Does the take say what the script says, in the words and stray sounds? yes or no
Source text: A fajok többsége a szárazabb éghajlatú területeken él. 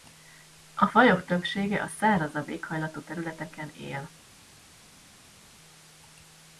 yes